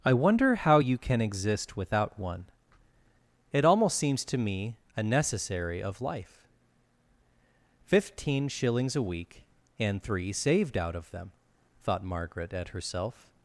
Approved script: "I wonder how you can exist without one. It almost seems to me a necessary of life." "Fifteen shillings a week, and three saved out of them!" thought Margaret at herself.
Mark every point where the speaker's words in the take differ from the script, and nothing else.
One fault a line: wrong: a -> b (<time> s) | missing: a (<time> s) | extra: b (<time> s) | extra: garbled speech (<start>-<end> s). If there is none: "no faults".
no faults